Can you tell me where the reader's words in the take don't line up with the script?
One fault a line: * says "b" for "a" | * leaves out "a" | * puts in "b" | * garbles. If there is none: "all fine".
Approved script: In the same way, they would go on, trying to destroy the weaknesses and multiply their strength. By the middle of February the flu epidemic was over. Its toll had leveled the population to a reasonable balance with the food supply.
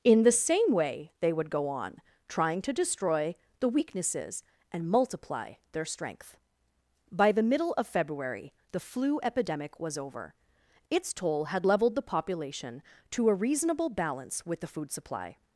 all fine